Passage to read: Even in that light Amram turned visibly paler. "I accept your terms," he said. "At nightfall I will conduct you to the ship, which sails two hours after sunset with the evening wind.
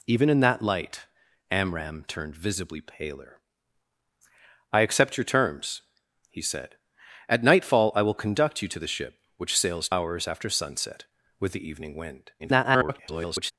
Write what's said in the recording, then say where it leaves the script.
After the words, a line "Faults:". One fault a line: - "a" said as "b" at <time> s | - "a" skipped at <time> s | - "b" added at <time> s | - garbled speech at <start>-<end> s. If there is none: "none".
Even in that light Amram turned visibly paler. "I accept your terms," he said. "At nightfall I will conduct you to the ship, which sails hours after sunset with the evening wind. [garbled]
Faults:
- "two" skipped at 9.9 s
- garbled speech at 12.4-13.5 s